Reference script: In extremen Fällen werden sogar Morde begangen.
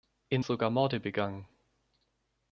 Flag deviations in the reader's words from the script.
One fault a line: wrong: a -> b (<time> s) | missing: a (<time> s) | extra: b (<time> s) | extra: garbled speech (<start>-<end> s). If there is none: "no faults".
missing: extremen Fällen werden (0.5 s)